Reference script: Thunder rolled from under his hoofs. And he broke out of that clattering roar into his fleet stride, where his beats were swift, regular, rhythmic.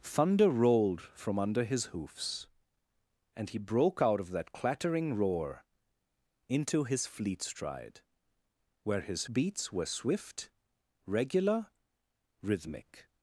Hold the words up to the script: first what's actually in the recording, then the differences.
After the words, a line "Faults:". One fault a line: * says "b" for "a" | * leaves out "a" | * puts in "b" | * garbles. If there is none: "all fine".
Thunder rolled from under his hoofs. And he broke out of that clattering roar into his fleet stride, where his beats were swift, regular, rhythmic.
Faults:
all fine